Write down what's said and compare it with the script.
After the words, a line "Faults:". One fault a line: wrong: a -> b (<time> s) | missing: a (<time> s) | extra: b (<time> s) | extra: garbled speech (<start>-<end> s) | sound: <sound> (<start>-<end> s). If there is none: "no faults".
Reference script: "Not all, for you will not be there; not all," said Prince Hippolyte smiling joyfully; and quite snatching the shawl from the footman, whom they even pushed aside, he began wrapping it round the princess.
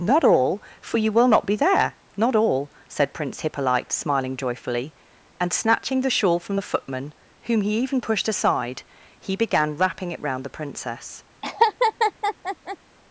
"Not all, for you will not be there; not all," said Prince Hippolyte smiling joyfully; and snatching the shawl from the footman, whom he even pushed aside, he began wrapping it round the princess.
Faults:
missing: quite (5.5 s)
wrong: they -> he (7.6 s)
sound: laugh (11.4-12.8 s)